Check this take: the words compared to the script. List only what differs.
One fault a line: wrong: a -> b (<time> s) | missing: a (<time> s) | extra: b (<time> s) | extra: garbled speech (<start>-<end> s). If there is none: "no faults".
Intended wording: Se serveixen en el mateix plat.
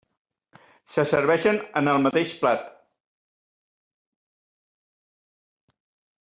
no faults